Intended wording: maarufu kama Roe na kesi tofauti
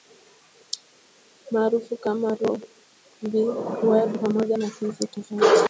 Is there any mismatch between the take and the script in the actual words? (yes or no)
yes